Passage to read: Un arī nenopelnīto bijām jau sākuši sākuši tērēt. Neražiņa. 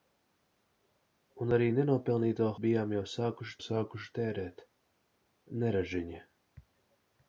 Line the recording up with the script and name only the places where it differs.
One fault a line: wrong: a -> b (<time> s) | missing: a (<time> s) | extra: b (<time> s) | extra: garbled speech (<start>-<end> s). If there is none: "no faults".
no faults